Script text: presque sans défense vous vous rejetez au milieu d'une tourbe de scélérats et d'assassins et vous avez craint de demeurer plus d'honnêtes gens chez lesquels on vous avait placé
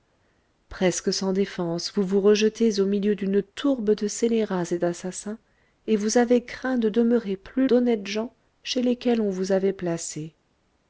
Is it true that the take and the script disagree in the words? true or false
false